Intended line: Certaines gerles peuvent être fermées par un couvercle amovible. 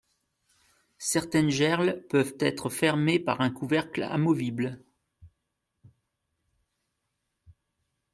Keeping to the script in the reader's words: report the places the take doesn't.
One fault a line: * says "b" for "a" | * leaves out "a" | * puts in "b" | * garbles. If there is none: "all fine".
all fine